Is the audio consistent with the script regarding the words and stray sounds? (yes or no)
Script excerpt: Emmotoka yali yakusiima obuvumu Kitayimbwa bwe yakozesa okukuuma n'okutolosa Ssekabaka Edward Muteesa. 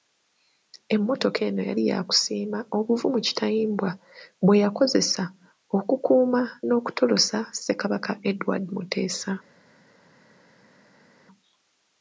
no